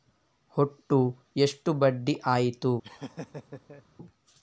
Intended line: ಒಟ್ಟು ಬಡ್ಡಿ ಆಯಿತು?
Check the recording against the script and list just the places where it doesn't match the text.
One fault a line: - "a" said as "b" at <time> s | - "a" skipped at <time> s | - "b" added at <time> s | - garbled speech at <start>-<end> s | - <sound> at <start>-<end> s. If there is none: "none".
- "ಎಷ್ಟು" added at 1.4 s
- laugh at 2.8-3.8 s